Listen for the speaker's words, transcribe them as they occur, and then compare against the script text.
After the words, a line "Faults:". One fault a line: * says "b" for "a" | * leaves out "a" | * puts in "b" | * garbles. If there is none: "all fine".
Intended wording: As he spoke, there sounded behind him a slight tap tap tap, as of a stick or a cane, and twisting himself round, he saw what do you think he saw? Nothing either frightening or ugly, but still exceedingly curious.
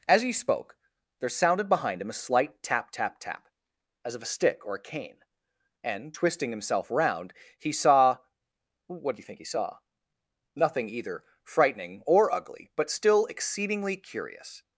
As he spoke, there sounded behind him a slight tap tap tap, as of a stick or a cane, and twisting himself round, he saw what do you think he saw? Nothing either frightening or ugly, but still exceedingly curious.
Faults:
all fine